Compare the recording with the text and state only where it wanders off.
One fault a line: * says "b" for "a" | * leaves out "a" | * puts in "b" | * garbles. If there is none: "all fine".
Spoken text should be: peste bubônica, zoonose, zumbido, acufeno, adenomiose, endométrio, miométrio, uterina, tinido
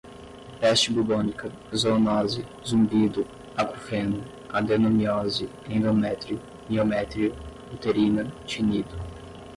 all fine